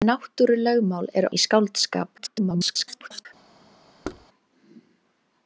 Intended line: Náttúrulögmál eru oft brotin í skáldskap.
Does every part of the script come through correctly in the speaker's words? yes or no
no